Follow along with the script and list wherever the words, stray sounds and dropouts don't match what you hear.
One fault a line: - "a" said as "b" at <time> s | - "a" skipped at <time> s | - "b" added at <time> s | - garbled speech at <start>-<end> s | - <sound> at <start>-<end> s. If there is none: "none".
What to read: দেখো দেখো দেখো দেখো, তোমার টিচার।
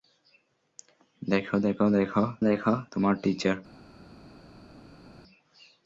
none